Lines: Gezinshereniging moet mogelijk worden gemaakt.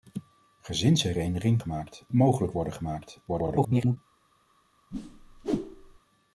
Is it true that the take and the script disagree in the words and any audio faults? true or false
true